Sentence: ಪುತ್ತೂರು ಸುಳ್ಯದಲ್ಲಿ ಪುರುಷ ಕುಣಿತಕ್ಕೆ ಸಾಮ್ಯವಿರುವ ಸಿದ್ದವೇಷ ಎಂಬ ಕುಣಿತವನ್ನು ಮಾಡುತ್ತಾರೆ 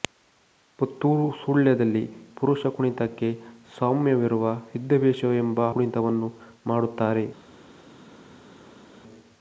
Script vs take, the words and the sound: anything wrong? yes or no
no